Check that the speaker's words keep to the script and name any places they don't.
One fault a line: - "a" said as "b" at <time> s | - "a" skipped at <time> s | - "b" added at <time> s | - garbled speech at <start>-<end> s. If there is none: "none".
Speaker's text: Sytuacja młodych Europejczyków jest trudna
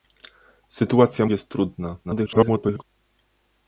- "młodych Europejczyków" skipped at 1.2 s
- garbled speech at 2.0-2.8 s